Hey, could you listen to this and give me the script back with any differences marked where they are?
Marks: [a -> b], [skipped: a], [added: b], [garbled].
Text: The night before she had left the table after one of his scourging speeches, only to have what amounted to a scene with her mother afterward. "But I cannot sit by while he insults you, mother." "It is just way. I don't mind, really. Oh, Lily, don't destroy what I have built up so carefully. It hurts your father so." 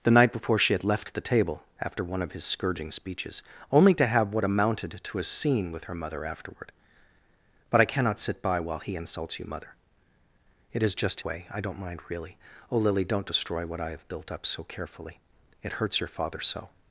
The night before she had left the table after one of his scourging speeches, only to have what amounted to a scene with her mother afterward. "But I cannot sit by while he insults you, mother." "It is just way. I don't mind, really. Oh, Lily, don't destroy what I have built up so carefully. It hurts your father so."